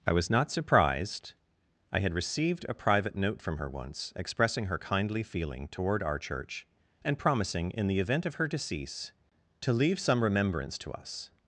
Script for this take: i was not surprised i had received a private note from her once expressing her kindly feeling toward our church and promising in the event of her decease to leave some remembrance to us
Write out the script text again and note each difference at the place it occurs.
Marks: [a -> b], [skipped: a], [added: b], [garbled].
i was not surprised i had received a private note from her once expressing her kindly feeling toward our church and promising in the event of her decease to leave some remembrance to us